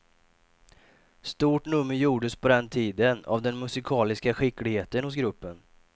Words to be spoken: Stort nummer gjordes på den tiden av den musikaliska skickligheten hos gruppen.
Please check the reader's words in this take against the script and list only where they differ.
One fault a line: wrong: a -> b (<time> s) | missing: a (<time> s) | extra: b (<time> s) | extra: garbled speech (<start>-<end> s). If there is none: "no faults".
no faults